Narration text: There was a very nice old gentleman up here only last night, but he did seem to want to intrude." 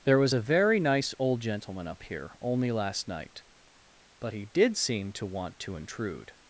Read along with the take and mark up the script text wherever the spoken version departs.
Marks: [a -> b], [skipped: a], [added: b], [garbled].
There was a very nice old gentleman up here only last night, but he did seem to want to intrude."